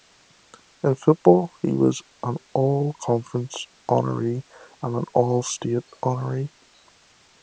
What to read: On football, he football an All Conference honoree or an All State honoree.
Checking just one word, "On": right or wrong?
wrong